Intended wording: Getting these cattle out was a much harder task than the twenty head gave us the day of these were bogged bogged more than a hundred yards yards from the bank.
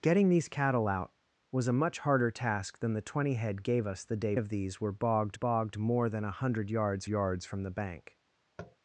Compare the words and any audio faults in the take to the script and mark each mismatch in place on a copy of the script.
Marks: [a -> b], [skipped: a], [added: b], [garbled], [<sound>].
Getting these cattle out was a much harder task than the twenty head gave us the day of these were bogged bogged more than a hundred yards yards from the bank. [tap]